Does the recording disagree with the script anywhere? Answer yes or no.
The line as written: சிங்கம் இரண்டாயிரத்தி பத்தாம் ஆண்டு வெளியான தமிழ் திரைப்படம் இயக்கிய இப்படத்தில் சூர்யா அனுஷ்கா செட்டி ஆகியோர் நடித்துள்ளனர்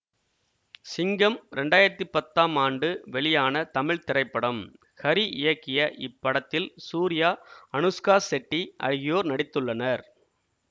yes